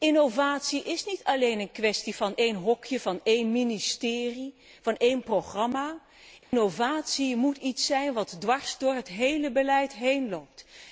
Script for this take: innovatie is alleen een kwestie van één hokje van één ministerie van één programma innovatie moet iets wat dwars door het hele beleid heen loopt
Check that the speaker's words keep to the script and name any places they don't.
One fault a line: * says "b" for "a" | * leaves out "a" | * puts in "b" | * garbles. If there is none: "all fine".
* puts in "niet"
* puts in "zijn"